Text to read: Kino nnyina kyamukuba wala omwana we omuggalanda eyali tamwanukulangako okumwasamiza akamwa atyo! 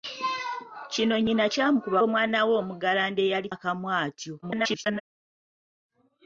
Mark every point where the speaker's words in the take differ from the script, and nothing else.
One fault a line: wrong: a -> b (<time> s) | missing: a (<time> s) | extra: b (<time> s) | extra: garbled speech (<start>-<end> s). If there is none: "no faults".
missing: wala (2.0 s)
missing: tamwanukulangako okumwasamiza (3.5 s)
extra: garbled speech (4.4-5.0 s)